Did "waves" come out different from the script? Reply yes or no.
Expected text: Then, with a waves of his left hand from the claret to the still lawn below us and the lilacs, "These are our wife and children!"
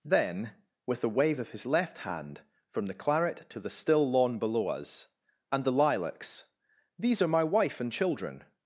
yes